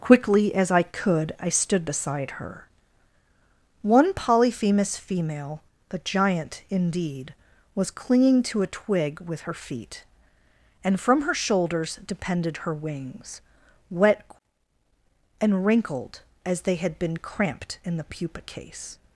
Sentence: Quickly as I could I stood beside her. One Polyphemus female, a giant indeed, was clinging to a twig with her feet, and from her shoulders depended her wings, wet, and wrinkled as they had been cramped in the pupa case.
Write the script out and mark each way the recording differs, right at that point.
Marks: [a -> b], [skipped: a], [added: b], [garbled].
Quickly as I could I stood beside her. One Polyphemus female, [a -> the] giant indeed, was clinging to a twig with her feet, and from her shoulders depended her wings, wet, and wrinkled as they had been cramped in the pupa case.